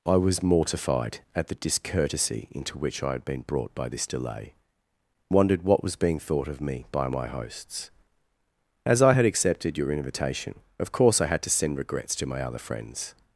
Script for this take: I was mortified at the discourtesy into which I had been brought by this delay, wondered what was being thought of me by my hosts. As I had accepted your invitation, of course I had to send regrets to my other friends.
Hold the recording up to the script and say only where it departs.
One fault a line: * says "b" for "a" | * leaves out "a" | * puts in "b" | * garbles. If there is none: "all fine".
all fine